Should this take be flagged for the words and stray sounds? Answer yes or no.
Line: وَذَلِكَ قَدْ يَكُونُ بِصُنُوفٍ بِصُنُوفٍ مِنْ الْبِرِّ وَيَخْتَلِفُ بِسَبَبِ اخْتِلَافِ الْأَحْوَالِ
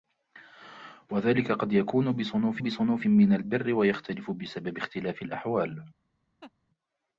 yes